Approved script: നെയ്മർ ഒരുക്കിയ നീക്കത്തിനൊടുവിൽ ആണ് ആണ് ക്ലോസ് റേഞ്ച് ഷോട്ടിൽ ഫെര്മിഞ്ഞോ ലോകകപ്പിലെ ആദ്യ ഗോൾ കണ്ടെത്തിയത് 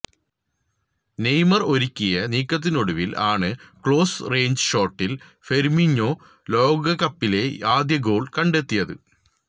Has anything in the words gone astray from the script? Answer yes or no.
yes